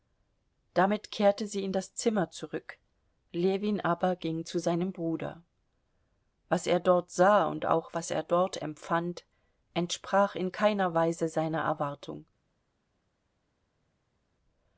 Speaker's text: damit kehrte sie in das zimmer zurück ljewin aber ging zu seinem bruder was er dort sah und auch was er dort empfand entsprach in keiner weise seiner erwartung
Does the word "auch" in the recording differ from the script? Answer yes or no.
no